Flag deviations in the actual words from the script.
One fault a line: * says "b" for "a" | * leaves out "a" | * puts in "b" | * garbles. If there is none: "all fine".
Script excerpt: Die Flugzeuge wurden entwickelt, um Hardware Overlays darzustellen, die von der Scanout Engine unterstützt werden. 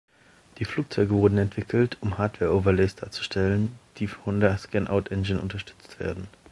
all fine